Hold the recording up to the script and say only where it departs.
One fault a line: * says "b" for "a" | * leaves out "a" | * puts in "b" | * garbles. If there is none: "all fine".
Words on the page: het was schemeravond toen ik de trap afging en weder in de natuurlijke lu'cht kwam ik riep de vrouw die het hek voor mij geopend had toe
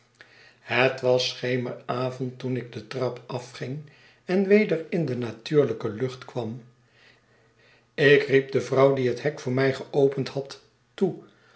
all fine